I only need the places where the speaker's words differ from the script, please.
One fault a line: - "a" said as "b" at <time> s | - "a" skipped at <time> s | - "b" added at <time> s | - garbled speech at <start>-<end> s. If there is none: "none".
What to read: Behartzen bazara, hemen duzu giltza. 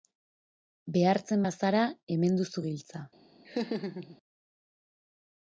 none